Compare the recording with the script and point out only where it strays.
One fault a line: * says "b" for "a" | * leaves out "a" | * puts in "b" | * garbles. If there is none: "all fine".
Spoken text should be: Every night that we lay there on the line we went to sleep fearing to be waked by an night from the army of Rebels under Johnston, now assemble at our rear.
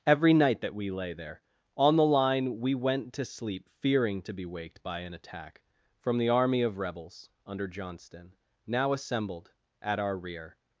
* says "attack" for "night"
* says "assembled" for "assemble"